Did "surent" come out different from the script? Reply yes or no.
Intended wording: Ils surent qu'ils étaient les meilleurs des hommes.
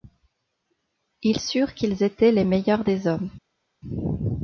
no